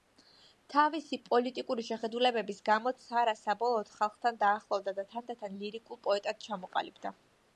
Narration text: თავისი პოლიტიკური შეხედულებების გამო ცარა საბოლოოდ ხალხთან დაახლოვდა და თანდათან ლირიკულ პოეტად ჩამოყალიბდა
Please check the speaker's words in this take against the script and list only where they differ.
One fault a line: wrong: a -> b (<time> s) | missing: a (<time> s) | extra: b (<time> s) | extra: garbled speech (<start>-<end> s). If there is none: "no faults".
no faults